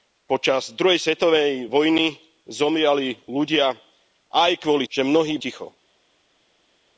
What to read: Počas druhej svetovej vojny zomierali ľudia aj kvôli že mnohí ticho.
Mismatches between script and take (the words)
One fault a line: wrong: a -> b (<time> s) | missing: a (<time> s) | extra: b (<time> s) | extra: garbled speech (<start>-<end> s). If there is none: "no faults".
no faults